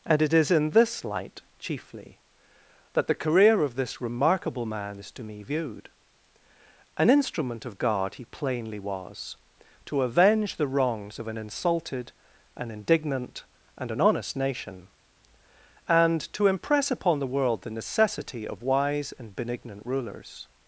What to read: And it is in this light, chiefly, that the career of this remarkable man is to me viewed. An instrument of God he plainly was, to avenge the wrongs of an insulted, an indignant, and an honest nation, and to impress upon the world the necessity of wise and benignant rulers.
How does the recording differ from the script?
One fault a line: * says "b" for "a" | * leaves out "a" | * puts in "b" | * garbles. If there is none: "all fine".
all fine